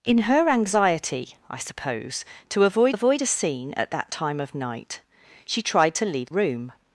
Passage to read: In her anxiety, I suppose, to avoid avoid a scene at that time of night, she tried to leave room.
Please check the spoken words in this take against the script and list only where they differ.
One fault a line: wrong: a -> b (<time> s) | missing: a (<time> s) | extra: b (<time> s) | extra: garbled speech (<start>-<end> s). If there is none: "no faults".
no faults